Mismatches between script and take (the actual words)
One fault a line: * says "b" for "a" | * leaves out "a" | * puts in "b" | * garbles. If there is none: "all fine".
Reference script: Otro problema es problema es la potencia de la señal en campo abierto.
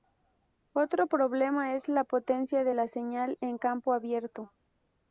* leaves out "problema es"